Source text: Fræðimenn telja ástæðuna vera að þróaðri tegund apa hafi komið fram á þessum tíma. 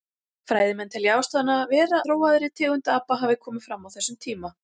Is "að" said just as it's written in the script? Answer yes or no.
no